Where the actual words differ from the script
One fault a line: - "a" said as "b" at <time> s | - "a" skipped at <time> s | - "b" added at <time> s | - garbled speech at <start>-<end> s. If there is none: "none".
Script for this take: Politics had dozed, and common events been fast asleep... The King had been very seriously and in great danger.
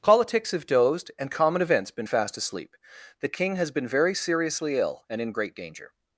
- "had" said as "have" at 0.5 s
- "had" said as "has" at 3.6 s
- "ill" added at 4.8 s